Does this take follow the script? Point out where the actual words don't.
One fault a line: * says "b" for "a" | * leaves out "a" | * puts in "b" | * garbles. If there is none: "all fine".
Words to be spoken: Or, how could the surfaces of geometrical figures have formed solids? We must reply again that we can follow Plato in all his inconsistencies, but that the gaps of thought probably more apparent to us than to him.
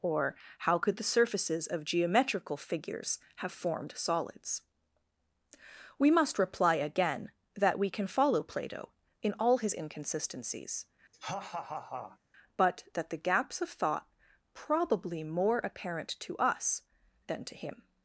all fine